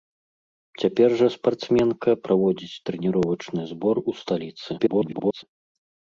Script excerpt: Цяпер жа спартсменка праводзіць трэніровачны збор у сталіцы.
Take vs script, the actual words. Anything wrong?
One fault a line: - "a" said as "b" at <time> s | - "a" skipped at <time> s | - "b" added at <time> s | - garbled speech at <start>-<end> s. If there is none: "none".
- garbled speech at 4.8-5.4 s